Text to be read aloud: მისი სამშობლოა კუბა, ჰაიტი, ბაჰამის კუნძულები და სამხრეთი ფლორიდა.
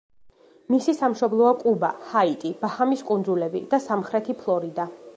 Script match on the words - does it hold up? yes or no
yes